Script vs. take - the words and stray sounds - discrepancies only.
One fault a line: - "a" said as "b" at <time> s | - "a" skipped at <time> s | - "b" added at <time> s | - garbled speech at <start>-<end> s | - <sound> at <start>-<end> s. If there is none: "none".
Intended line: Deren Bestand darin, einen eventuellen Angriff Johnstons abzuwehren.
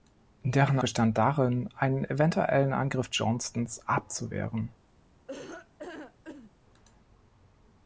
- laugh at 5.3-6.5 s